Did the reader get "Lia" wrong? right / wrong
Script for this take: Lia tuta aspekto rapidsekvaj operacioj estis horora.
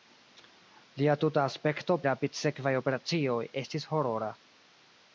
right